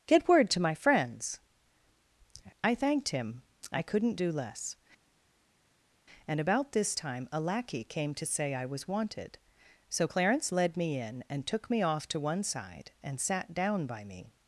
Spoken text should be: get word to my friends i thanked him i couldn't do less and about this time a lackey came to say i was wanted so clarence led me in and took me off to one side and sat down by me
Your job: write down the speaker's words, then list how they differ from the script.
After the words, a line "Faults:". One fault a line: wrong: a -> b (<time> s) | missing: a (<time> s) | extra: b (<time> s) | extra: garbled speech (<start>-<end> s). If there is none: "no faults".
get word to my friends i thanked him i couldn't do less and about this time a lackey came to say i was wanted so clarence led me in and took me off to one side and sat down by me
Faults:
no faults